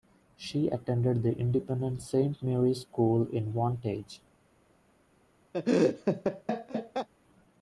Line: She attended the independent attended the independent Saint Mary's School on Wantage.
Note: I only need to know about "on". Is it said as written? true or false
false